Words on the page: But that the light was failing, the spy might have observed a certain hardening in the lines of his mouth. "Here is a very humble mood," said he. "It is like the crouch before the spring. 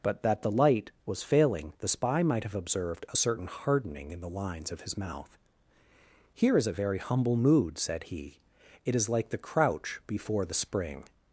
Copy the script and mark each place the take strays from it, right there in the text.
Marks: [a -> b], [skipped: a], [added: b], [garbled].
But that the light was failing, the spy might have observed a certain hardening in the lines of his mouth. "Here is a very humble mood," said he. "It is like the crouch before the spring.